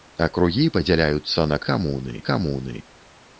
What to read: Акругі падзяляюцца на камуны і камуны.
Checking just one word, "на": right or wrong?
right